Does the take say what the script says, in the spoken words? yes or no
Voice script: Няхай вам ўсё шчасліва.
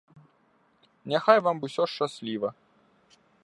yes